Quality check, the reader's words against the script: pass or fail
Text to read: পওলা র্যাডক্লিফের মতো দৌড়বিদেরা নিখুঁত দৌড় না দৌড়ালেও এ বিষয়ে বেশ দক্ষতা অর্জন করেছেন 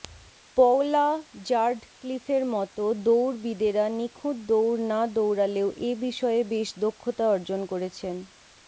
pass